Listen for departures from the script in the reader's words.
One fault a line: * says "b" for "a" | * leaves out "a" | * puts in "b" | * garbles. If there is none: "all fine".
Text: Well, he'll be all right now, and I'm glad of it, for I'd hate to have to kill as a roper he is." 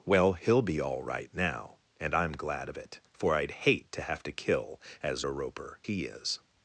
all fine